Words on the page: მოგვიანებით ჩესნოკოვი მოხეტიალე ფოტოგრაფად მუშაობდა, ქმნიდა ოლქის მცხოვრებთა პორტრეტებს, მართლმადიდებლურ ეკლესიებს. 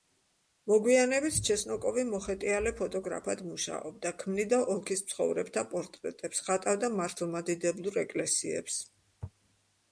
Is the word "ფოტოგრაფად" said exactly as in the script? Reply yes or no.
yes